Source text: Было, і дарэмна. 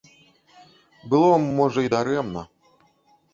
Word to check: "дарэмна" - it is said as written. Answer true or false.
true